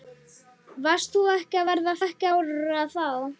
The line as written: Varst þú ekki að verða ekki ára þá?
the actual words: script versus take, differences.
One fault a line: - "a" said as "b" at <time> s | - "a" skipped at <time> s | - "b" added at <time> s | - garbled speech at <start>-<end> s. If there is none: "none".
none